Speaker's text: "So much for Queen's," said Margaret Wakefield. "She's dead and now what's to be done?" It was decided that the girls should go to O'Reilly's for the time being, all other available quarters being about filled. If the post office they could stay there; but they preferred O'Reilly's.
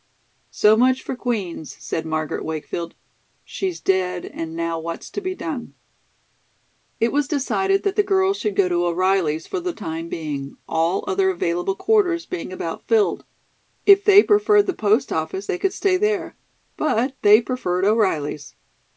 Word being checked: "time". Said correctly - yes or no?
yes